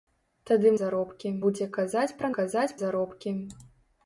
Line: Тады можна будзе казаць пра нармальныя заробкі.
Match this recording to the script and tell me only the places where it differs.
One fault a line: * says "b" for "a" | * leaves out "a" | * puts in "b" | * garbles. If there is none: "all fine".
* says "заробкі" for "можна"
* says "казаць" for "нармальныя"